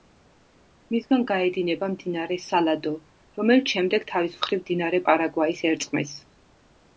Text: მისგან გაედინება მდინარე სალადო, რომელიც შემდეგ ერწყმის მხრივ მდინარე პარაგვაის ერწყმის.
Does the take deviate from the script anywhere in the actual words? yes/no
yes